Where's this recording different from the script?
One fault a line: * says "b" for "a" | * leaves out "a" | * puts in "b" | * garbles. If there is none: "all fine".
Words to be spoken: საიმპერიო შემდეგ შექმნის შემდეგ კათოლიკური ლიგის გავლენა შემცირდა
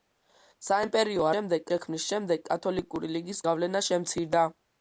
all fine